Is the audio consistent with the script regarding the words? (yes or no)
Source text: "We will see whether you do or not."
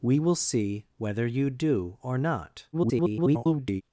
no